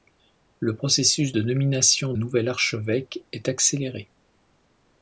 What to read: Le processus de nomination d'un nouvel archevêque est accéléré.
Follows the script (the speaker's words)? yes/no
no